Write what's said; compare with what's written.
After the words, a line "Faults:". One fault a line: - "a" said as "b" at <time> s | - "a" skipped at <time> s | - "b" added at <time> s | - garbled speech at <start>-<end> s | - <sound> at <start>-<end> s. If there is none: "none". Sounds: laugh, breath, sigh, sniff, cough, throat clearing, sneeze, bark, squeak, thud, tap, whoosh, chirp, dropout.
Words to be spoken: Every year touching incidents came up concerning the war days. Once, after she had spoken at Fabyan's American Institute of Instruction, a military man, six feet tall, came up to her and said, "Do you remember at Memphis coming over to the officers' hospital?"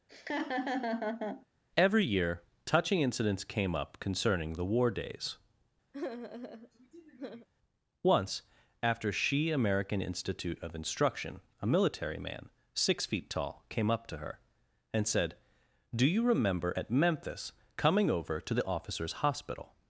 Every year touching incidents came up concerning the war days. Once, after she American Institute of Instruction, a military man, six feet tall, came up to her and said, "Do you remember at Memphis coming over to the officers' hospital?"
Faults:
- laugh at 0.1-1.5 s
- sigh at 5.9-7.5 s
- "had spoken at Fabyan's" skipped at 9.5 s